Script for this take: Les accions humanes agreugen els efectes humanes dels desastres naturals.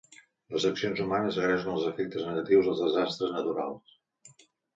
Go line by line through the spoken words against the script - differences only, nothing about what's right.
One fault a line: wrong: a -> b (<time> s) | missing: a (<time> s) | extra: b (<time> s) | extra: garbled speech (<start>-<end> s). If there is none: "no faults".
wrong: humanes -> negatius (2.3 s)